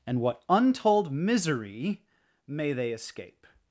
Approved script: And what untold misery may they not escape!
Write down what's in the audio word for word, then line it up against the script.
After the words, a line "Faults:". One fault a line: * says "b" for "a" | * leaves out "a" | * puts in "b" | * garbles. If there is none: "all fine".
And what untold misery may they escape!
Faults:
* leaves out "not"